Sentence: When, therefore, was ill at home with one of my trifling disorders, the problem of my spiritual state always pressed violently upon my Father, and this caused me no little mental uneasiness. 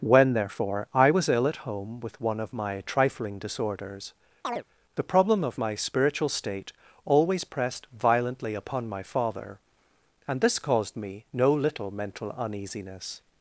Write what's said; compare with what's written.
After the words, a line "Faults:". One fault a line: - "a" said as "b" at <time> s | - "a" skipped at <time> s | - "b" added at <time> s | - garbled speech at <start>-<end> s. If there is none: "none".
When, therefore, I was ill at home with one of my trifling disorders, the problem of my spiritual state always pressed violently upon my Father, and this caused me no little mental uneasiness.
Faults:
- "I" added at 0.9 s